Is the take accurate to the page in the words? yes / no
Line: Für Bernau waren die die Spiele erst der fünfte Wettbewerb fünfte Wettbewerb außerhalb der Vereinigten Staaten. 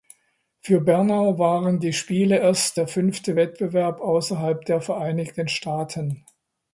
no